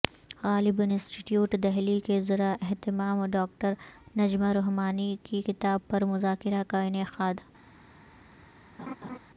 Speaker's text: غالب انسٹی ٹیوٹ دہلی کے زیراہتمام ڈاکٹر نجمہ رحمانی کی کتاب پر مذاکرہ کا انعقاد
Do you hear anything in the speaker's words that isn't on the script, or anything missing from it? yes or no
no